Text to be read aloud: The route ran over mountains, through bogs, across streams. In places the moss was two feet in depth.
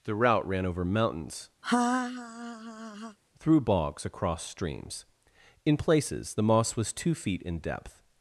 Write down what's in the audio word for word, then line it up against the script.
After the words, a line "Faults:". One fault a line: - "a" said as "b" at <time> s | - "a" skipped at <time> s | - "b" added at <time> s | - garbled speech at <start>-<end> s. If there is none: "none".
The route ran over mountains, through bogs, across streams. In places the moss was two feet in depth.
Faults:
none